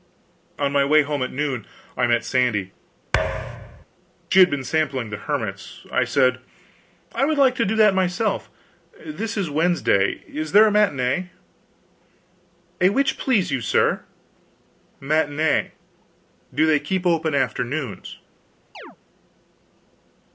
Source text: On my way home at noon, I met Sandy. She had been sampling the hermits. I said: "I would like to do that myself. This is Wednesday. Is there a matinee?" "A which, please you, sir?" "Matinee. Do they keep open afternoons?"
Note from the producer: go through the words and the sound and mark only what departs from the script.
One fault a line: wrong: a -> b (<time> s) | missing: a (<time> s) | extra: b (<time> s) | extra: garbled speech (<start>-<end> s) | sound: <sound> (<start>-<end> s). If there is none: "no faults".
sound: thud (3.1-3.9 s)
sound: chirp (18.7-19.0 s)